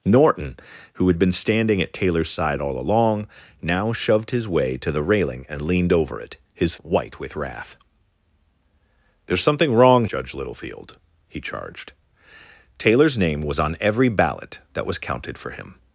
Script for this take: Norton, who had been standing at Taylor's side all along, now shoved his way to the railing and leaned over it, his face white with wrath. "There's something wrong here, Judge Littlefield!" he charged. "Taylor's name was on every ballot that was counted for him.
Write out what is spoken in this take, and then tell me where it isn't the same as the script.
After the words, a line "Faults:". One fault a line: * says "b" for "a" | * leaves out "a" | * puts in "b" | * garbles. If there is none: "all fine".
Norton, who had been standing at Taylor's side all along, now shoved his way to the railing and leaned over it, his white with wrath. "There's something wrong Judge Littlefield!" he charged. "Taylor's name was on every ballot that was counted for him.
Faults:
* leaves out "face"
* leaves out "here"